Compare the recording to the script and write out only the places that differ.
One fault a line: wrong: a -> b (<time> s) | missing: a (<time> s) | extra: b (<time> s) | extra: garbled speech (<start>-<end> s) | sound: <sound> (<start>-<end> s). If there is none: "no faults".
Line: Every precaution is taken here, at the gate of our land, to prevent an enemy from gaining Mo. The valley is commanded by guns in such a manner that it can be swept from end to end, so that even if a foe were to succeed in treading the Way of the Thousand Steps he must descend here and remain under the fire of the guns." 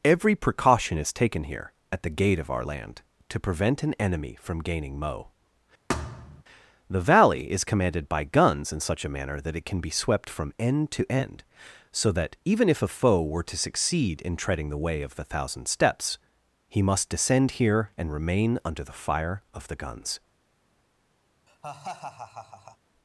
sound: thud (5.9-6.4 s)
sound: laugh (21.5-22.8 s)